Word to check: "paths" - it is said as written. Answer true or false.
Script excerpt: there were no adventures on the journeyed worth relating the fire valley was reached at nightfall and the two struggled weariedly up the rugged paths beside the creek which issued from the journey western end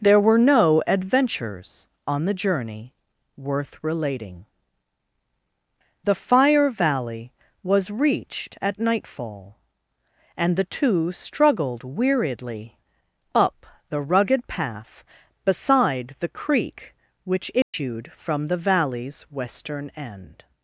false